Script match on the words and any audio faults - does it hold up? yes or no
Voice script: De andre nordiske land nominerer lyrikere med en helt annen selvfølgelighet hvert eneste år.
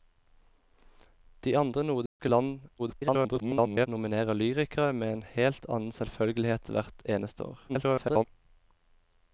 no